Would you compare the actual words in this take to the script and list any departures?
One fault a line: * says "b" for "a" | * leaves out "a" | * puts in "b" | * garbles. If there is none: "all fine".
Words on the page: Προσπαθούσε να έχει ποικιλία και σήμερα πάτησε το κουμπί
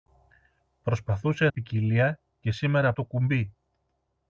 * leaves out "να έχει"
* leaves out "πάτησε"